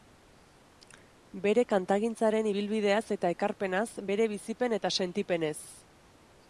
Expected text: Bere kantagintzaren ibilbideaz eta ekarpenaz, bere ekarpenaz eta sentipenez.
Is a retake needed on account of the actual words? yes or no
yes